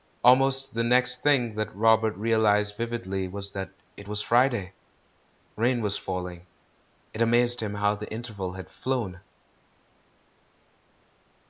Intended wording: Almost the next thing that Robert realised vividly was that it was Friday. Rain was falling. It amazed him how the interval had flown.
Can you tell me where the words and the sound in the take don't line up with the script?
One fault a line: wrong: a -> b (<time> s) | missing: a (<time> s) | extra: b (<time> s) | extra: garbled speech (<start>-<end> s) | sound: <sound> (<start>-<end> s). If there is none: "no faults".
no faults